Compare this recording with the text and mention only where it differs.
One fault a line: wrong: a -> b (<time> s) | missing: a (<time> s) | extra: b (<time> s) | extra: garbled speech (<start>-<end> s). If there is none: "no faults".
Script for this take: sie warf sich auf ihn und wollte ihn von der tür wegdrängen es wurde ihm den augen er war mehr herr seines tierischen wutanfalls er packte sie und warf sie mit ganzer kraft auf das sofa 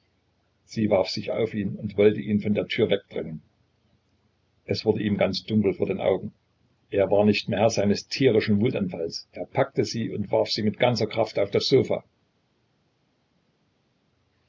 extra: ganz dunkel vor (5.2 s)
extra: nicht (7.3 s)